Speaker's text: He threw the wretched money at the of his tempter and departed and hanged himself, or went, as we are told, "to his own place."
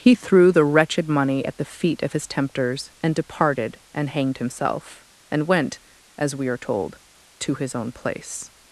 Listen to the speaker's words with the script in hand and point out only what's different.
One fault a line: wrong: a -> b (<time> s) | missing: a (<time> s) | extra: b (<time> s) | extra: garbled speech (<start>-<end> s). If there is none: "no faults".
extra: feet (1.6 s)
wrong: tempter -> tempters (2.3 s)
wrong: or -> and (5.3 s)